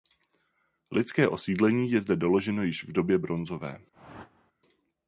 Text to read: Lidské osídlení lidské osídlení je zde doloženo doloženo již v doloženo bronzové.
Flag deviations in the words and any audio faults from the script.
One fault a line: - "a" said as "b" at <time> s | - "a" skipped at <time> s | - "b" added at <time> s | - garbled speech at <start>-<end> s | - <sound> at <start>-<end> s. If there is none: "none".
- "lidské osídlení" skipped at 1.9 s
- "doloženo" skipped at 2.6 s
- "doloženo" said as "době" at 2.9 s
- whoosh at 3.9-4.5 s